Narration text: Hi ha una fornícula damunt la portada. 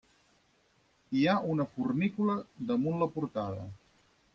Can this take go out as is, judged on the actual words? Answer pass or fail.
pass